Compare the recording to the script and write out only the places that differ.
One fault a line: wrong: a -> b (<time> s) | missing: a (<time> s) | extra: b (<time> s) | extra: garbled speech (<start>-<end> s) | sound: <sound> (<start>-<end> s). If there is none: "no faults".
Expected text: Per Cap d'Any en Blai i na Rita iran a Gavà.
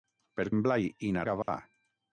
missing: Cap d'Any (0.5 s)
missing: Rita iran (1.2 s)
sound: dropout (1.4-1.5 s)